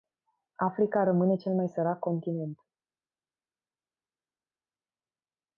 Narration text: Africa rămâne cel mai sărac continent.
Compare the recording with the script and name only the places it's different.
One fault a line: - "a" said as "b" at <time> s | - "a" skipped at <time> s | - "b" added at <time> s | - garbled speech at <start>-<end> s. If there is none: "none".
none